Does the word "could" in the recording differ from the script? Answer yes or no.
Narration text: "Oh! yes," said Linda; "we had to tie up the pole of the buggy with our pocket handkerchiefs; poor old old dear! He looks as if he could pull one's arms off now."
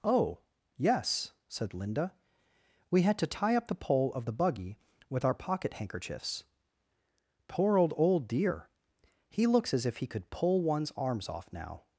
no